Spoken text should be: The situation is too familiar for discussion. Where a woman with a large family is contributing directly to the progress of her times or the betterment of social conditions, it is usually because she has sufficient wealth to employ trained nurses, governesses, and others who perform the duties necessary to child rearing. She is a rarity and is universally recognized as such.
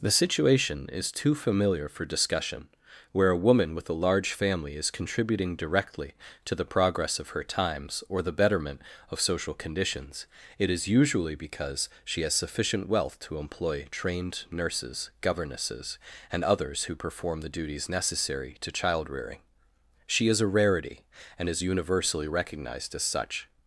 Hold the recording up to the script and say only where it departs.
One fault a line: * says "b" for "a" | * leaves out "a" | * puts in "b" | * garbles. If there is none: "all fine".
all fine